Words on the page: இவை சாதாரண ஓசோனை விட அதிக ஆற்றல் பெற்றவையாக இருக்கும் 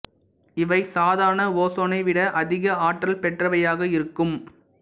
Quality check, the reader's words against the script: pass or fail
pass